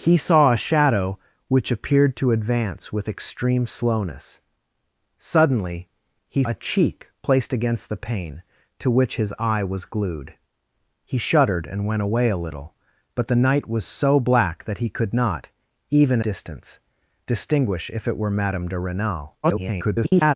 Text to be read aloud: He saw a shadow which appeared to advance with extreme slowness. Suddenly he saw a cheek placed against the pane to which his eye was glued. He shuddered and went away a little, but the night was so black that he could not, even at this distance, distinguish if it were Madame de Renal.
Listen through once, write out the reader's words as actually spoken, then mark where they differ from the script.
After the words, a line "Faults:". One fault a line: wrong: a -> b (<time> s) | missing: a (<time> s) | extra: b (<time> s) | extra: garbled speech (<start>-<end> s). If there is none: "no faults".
He saw a shadow which appeared to advance with extreme slowness. Suddenly he a cheek placed against the pane to which his eye was glued. He shuddered and went away a little, but the night was so black that he could not, even distance, distinguish if it were Madame de Renal. [garbled]
Faults:
missing: saw (6.4 s)
missing: at this (16.2 s)
extra: garbled speech (19.4-20.3 s)